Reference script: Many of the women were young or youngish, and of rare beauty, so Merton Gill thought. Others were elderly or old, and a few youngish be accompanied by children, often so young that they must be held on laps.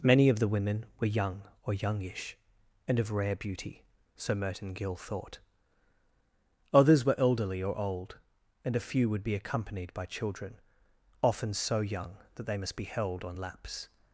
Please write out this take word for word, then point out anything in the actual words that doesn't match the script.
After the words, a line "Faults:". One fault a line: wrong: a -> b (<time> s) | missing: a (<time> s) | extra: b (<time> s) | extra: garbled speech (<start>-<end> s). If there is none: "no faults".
Many of the women were young or youngish, and of rare beauty, so Merton Gill thought. Others were elderly or old, and a few would be accompanied by children, often so young that they must be held on laps.
Faults:
wrong: youngish -> would (9.1 s)